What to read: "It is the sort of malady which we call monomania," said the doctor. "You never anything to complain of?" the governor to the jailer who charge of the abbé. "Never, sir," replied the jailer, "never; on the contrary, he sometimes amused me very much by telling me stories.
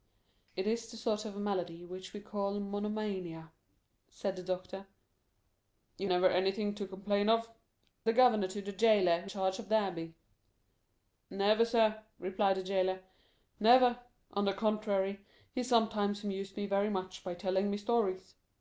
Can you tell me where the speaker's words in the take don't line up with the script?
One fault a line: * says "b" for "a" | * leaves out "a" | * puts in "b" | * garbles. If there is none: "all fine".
all fine